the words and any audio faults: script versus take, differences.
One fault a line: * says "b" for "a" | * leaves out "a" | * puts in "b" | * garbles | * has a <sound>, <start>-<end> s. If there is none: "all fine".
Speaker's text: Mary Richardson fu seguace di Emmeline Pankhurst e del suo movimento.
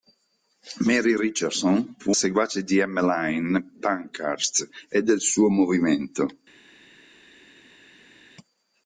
all fine